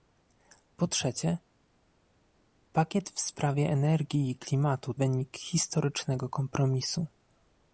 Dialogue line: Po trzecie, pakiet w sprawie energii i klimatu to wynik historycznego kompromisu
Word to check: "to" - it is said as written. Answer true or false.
false